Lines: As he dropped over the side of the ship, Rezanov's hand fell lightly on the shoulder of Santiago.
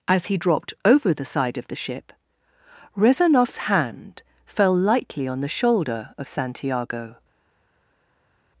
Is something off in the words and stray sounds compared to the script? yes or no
no